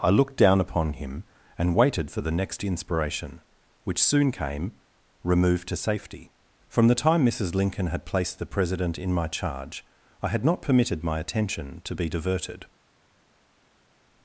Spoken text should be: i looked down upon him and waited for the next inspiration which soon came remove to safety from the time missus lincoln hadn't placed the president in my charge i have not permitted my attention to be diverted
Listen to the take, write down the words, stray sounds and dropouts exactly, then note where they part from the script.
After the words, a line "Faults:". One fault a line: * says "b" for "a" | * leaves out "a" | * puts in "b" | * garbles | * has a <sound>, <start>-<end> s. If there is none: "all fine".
i looked down upon him and waited for the next inspiration which soon came remove to safety from the time missus lincoln had placed the president in my charge i had not permitted my attention to be diverted
Faults:
* says "had" for "hadn't"
* says "had" for "have"